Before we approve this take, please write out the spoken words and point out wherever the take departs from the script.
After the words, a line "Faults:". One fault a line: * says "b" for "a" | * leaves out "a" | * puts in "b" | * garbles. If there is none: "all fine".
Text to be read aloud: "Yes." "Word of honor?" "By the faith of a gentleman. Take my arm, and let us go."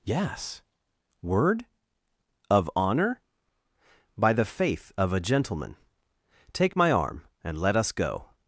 "Yes." "Word of honor?" "By the faith of a gentleman. Take my arm, and let us go."
Faults:
all fine